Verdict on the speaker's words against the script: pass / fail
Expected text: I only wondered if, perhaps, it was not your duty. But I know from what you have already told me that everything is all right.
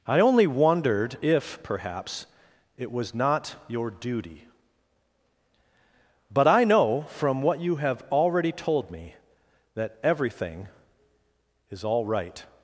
pass